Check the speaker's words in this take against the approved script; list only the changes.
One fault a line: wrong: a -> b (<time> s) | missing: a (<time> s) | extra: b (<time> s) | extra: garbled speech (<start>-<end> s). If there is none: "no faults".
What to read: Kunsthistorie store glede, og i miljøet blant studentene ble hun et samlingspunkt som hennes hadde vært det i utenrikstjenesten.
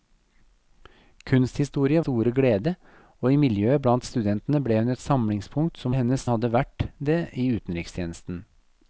no faults